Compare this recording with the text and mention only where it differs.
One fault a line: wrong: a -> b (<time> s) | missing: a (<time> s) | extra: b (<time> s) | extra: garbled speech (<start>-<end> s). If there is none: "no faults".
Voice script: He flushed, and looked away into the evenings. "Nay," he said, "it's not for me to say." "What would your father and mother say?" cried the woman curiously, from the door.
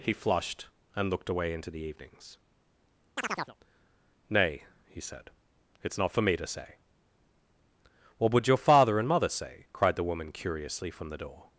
no faults